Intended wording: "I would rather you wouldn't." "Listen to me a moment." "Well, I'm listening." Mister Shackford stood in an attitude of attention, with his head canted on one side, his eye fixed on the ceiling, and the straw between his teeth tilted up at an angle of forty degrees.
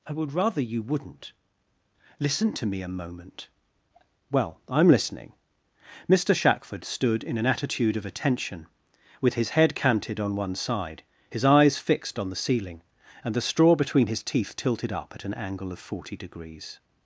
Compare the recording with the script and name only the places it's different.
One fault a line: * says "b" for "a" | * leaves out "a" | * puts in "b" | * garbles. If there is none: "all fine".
* says "eyes" for "eye"